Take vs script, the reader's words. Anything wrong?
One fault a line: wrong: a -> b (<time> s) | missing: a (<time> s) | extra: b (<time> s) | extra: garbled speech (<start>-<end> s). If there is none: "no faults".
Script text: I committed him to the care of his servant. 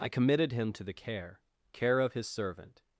extra: care (1.7 s)